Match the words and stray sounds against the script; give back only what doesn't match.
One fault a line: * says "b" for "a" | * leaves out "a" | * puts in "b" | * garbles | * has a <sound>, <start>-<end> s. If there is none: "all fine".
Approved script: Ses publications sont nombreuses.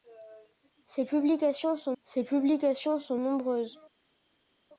* puts in "ses publications sont"